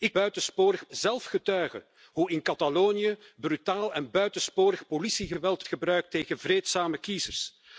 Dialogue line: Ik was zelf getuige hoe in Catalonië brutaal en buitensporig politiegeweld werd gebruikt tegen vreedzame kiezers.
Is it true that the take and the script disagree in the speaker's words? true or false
true